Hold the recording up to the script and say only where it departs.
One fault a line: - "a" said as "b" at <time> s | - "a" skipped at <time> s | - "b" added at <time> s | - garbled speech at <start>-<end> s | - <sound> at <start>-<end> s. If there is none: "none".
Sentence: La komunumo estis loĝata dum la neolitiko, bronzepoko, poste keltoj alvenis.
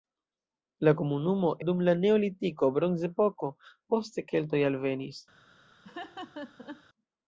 - "estis loĝata" skipped at 1.5 s
- laugh at 5.8-6.8 s